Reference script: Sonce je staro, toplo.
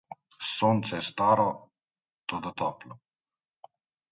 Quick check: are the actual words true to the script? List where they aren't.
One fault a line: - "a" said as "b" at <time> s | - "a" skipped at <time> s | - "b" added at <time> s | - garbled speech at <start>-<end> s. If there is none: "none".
- "toda" added at 2.3 s